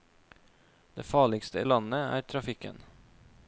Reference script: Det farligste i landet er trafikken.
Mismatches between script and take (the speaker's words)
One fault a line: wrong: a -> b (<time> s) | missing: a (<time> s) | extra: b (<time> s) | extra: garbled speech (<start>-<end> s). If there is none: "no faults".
no faults